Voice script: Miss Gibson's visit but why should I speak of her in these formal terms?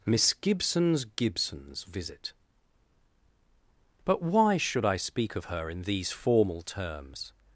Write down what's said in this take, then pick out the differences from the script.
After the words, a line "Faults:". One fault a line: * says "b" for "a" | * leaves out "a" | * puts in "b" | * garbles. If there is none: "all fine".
Miss Gibson's Gibson's visit but why should I speak of her in these formal terms?
Faults:
* puts in "Gibson's"